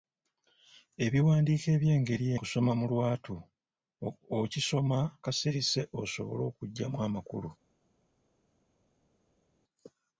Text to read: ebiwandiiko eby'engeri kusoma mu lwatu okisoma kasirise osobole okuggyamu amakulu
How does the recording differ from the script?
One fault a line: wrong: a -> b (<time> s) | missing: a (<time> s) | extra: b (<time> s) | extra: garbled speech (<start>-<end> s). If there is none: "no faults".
no faults